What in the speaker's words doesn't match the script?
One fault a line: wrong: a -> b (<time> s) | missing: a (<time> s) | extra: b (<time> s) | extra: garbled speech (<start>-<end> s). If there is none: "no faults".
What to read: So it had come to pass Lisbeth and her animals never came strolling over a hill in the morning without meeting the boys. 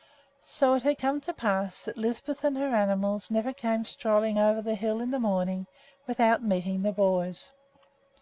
extra: that (1.8 s)
wrong: a -> the (4.6 s)